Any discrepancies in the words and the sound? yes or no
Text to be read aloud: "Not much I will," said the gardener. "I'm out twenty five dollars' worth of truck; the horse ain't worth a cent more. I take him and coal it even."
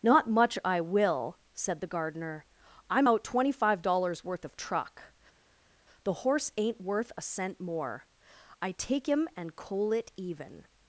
no